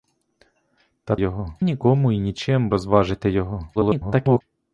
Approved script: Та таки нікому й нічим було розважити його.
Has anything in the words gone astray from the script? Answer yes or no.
yes